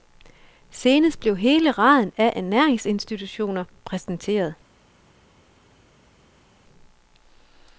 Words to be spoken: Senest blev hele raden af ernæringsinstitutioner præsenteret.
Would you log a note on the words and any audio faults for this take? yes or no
no